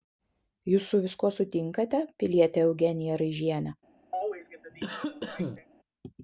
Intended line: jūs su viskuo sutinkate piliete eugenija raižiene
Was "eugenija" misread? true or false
false